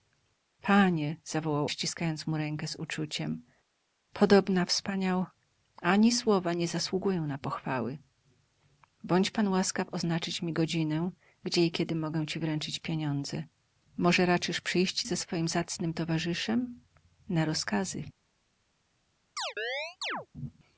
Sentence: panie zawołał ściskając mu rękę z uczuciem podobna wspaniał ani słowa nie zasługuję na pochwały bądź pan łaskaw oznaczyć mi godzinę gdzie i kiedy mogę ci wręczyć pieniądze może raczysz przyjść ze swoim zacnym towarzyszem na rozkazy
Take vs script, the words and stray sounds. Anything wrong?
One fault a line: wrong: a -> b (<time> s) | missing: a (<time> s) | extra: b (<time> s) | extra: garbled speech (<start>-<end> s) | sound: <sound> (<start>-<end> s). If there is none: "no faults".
sound: chirp (19.4-20.3 s)